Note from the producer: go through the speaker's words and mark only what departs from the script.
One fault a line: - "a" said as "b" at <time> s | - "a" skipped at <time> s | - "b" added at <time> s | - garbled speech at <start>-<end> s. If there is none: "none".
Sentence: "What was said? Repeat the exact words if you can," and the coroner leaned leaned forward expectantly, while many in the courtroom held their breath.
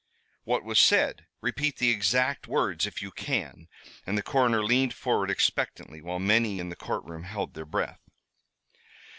- "leaned" skipped at 4.9 s